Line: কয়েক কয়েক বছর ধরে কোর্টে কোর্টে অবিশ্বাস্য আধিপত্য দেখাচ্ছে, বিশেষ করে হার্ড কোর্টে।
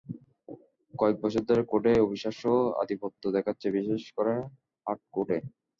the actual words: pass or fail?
fail